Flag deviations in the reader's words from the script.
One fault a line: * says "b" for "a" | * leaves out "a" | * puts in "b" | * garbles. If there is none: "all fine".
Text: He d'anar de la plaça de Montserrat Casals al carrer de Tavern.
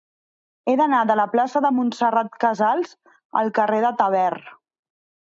all fine